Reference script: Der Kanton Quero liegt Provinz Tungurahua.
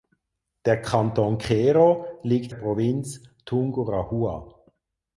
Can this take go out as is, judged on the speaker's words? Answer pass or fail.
pass